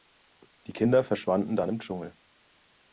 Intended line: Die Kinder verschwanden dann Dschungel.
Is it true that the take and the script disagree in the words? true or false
true